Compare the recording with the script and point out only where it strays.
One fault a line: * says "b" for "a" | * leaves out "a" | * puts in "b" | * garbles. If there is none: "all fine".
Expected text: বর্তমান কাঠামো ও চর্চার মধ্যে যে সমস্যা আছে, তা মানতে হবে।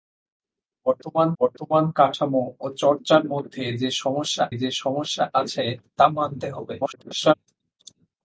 * puts in "বর্তমান"
* puts in "যে সমস্যা"
* garbles